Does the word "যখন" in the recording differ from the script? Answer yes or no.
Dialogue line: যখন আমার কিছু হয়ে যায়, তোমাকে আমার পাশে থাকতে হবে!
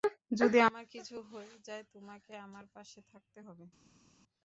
yes